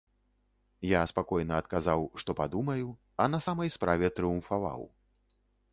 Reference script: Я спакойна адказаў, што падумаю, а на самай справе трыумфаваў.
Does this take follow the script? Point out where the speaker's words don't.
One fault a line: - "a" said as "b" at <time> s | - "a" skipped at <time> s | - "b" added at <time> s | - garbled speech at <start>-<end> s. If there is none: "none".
none